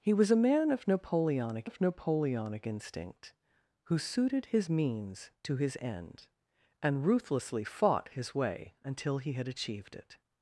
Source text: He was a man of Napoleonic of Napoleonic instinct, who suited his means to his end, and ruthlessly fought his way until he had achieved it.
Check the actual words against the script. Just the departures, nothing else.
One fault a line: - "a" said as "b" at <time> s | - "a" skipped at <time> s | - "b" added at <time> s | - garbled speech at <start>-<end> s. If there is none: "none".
none